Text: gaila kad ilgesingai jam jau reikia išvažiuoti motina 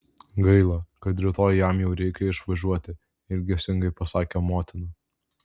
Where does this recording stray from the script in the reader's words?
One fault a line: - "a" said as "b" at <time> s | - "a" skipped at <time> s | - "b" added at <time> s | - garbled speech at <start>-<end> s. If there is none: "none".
- "ilgesingai" said as "rytoj" at 1.2 s
- "ilgesingai pasakė" added at 3.4 s